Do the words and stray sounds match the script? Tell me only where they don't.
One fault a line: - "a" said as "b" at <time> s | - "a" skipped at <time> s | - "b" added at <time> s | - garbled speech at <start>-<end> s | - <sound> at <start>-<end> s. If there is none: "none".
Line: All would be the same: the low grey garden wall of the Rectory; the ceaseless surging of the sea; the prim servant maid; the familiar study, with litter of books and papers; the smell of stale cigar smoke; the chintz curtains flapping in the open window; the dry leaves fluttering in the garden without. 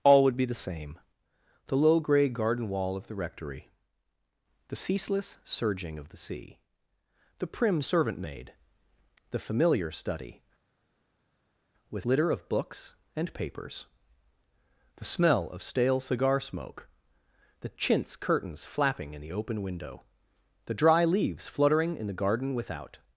none